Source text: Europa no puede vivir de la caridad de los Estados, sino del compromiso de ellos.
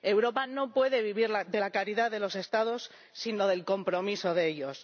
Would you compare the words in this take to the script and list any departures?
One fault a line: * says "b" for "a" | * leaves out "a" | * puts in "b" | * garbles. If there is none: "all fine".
all fine